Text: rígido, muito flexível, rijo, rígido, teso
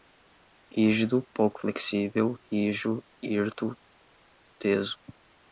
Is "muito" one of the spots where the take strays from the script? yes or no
yes